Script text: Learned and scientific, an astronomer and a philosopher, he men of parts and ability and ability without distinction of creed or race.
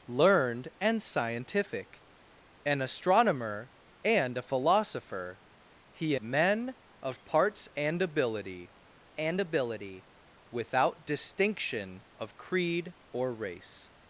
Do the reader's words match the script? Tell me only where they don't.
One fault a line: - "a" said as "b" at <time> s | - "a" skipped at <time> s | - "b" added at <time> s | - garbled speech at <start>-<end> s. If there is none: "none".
none